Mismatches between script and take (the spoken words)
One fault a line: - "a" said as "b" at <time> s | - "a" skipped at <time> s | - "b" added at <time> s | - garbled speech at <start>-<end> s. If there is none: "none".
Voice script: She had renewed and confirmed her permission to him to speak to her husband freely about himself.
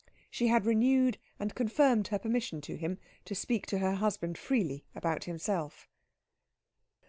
none